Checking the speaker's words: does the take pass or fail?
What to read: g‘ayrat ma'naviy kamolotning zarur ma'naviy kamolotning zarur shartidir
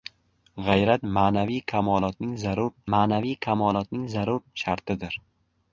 pass